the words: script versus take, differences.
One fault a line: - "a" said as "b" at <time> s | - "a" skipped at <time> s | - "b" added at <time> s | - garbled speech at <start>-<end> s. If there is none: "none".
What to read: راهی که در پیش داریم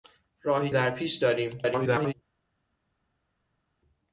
- "که" skipped at 0.7 s
- garbled speech at 1.6-2.1 s